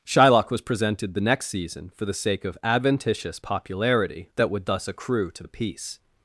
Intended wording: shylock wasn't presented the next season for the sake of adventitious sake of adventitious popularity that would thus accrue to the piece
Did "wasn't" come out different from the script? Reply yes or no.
yes